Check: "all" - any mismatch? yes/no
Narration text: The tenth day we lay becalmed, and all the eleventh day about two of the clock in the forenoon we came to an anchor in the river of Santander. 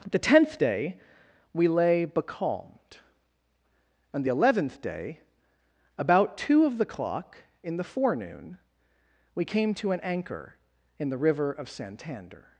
yes